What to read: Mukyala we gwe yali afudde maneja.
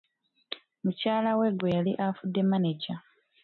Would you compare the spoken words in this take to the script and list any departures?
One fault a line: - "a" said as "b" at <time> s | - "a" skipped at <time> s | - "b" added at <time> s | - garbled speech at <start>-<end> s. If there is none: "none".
none